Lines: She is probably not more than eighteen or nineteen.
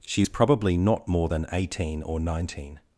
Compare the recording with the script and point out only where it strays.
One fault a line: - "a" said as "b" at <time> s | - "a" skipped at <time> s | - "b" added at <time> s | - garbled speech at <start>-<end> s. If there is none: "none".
none